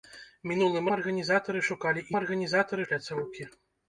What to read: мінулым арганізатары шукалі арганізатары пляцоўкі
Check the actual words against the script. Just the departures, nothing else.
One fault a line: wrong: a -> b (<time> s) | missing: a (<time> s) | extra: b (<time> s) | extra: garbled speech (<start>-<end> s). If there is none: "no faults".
no faults